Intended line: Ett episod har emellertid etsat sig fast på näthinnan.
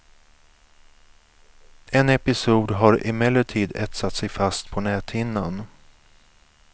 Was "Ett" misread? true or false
true